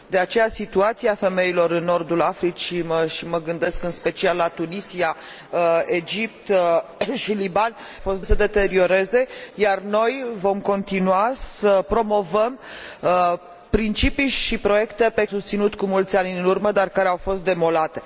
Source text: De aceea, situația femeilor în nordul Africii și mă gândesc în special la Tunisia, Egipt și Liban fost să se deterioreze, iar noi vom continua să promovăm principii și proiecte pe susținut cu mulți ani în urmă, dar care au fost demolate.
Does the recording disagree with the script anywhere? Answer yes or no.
no